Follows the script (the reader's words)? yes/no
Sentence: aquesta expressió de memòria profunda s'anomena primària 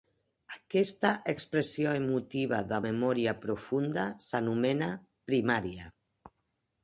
no